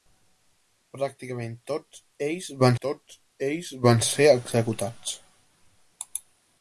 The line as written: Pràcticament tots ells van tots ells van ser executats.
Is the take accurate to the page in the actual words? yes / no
yes